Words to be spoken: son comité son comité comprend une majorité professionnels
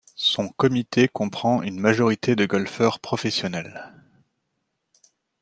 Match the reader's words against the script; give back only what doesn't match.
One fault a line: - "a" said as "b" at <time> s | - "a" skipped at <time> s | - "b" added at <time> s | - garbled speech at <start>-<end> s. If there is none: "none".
- "son comité" skipped at 1.1 s
- "de golfeurs" added at 2.4 s